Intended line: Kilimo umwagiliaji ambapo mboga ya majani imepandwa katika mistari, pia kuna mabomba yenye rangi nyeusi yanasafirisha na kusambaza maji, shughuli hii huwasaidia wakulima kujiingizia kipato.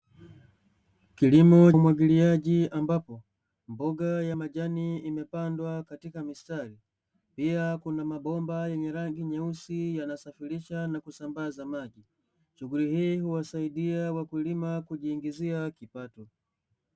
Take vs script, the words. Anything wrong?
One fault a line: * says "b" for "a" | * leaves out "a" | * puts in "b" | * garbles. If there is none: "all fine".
all fine